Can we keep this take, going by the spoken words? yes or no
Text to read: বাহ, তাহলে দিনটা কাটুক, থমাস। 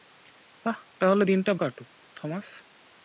yes